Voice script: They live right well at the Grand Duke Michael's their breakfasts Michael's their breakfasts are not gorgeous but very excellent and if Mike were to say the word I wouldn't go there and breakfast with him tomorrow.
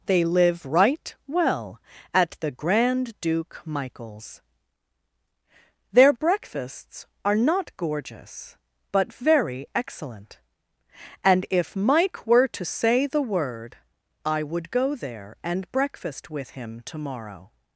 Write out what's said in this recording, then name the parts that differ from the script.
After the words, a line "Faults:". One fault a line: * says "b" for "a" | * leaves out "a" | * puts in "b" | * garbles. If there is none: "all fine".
They live right well at the Grand Duke Michael's their breakfasts are not gorgeous but very excellent and if Mike were to say the word I would go there and breakfast with him tomorrow.
Faults:
* leaves out "Michael's their breakfasts"
* says "would" for "wouldn't"